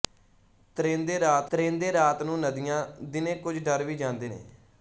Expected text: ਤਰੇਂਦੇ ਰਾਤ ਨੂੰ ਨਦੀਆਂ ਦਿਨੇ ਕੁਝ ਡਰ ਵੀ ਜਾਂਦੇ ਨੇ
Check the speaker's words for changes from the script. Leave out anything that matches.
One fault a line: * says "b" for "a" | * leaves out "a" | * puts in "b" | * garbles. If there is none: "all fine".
* puts in "ਤਰੇਂਦੇ ਰਾਤ"